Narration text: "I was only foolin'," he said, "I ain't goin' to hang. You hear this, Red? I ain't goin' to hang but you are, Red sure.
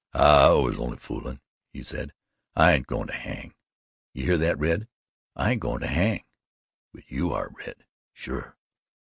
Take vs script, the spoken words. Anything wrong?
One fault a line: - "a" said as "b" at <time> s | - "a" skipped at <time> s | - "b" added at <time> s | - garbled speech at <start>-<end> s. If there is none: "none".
- "this" said as "that" at 4.4 s